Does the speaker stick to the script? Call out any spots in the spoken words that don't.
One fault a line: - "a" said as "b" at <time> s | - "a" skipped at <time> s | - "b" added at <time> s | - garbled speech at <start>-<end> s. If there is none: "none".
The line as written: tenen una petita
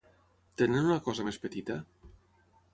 - "cosa més" added at 1.1 s